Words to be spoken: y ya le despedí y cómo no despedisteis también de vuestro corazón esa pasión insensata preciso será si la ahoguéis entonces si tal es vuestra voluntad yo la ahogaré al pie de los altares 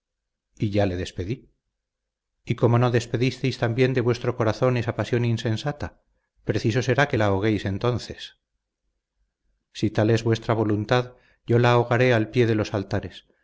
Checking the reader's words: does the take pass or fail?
fail